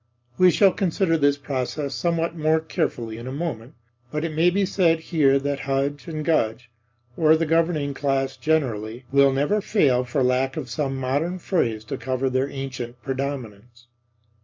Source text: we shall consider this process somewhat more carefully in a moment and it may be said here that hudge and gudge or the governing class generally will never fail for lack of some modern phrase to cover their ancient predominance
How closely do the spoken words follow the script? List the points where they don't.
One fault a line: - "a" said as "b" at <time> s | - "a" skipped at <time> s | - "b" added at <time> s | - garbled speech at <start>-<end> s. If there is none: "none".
- "and" said as "but" at 4.1 s